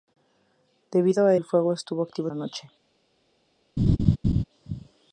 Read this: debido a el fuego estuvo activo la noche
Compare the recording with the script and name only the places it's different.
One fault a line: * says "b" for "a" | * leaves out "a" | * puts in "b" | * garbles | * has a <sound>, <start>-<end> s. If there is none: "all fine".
* has a laugh, 3.8-4.4 s